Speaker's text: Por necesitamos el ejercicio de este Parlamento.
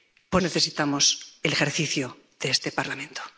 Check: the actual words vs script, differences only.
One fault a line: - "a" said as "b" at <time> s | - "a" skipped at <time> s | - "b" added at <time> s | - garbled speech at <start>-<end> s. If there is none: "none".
none